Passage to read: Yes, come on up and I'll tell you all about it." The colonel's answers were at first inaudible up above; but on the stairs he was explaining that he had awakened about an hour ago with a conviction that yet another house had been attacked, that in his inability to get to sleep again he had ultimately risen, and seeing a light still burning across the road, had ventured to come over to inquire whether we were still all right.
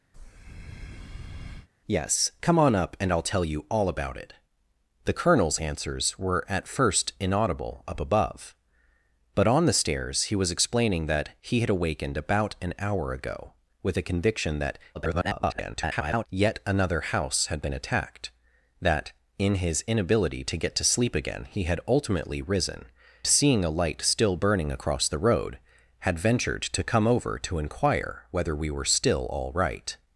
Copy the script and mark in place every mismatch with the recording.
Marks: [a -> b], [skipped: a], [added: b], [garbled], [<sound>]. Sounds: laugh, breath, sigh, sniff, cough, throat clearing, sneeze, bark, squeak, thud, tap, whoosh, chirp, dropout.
[breath] Yes, come on up and I'll tell you all about it." The colonel's answers were at first inaudible up above; but on the stairs he was explaining that he had awakened about an hour ago with a conviction that [garbled] yet another house had been attacked, that in his inability to get to sleep again he had ultimately risen, [skipped: and] seeing a light still burning across the road, had ventured to come over to inquire whether we were still all right.